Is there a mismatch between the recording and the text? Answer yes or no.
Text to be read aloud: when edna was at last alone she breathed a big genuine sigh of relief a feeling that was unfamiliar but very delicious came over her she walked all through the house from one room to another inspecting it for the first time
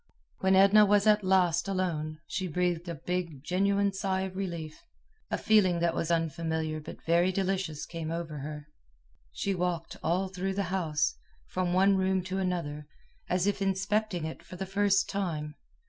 yes